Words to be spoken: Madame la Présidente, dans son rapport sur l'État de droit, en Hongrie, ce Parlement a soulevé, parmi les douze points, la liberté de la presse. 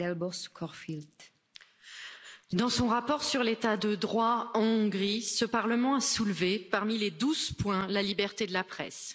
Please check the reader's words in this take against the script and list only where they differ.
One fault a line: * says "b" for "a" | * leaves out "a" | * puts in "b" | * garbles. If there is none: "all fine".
all fine